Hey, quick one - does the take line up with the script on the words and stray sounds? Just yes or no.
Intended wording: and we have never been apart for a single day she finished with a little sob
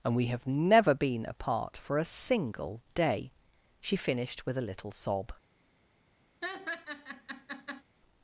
no